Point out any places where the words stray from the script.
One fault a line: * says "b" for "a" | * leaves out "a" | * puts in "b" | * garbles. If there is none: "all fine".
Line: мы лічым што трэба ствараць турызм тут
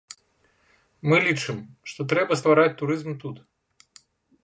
all fine